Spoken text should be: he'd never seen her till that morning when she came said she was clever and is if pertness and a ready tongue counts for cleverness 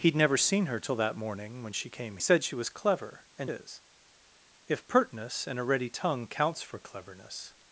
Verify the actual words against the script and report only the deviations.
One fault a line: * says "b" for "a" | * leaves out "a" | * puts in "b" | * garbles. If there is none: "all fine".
all fine